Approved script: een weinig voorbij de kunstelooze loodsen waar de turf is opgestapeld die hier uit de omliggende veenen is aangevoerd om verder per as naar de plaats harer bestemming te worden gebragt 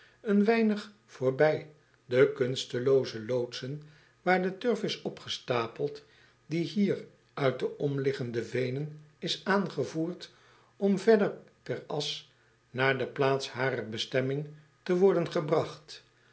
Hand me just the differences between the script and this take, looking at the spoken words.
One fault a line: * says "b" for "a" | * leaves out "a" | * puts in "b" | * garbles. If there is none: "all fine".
all fine